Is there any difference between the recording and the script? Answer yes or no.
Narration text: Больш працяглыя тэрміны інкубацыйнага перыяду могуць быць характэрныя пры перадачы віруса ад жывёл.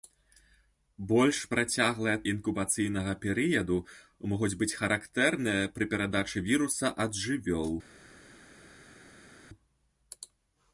yes